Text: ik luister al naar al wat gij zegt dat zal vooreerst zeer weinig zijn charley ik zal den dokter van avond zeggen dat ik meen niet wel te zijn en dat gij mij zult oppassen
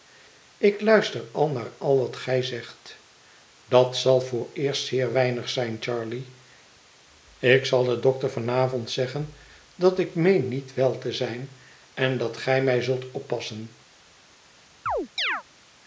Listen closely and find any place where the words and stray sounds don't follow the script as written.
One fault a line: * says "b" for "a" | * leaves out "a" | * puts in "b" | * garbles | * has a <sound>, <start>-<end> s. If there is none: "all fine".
* has a chirp, 14.9-15.4 s